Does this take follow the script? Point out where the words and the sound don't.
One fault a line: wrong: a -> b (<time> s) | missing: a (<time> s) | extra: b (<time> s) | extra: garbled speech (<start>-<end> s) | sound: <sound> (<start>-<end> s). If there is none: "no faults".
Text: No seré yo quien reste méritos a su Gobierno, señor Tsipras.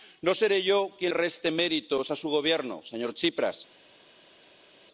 no faults